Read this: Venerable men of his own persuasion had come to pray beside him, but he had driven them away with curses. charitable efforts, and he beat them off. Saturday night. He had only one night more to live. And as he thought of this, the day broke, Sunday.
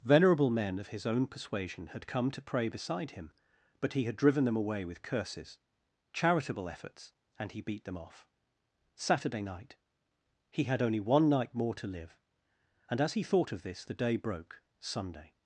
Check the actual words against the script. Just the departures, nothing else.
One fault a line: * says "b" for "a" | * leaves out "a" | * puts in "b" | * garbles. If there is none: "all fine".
all fine